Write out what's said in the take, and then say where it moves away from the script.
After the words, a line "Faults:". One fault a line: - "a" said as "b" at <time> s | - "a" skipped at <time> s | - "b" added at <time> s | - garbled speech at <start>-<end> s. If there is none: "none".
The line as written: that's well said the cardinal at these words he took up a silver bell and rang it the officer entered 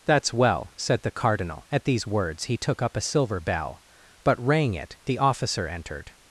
that's well said the cardinal at these words he took up a silver bell but rang it the officer entered
Faults:
- "and" said as "but" at 4.2 s